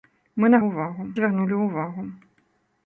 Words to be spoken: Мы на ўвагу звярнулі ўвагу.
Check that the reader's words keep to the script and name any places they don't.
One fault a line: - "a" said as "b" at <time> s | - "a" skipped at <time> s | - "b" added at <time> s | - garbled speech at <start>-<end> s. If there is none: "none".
none